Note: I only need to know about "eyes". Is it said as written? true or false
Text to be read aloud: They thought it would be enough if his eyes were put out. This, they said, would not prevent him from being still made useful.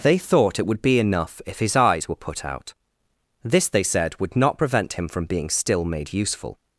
true